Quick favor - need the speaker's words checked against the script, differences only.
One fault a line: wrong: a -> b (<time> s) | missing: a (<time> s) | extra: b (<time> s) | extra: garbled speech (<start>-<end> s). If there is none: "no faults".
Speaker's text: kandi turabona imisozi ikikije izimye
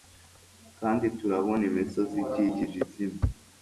no faults